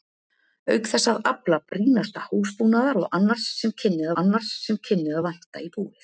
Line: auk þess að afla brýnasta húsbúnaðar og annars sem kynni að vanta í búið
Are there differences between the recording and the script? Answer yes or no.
yes